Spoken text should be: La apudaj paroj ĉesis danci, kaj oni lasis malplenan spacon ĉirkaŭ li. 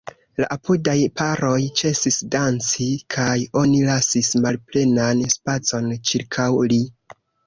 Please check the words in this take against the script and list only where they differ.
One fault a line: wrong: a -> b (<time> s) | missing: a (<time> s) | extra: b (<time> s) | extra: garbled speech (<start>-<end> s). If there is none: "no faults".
no faults